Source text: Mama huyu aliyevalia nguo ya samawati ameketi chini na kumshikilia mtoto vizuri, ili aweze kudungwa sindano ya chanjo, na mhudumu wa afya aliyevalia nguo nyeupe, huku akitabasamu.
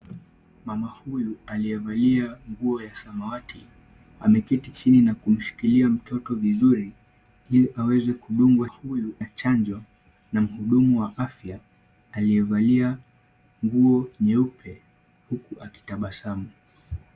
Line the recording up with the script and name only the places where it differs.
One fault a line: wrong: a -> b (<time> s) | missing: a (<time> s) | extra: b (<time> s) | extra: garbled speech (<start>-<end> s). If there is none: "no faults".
wrong: sindano -> huyu (8.6 s)